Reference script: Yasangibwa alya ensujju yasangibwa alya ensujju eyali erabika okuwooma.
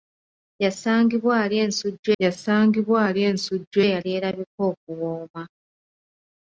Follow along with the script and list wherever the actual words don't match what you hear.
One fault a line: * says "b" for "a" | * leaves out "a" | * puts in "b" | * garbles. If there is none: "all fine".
all fine